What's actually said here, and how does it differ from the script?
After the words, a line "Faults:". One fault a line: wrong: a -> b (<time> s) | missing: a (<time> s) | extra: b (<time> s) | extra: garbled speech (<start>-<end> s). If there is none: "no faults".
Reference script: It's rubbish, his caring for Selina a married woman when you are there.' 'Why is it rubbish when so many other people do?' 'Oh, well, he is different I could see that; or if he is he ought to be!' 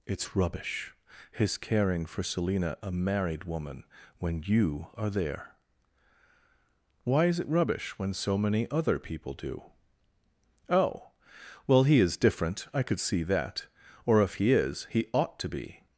It's rubbish, his caring for Selina a married woman when you are there.' 'Why is it rubbish when so many other people do?' 'Oh, well, he is different I could see that; or if he is he ought to be!'
Faults:
no faults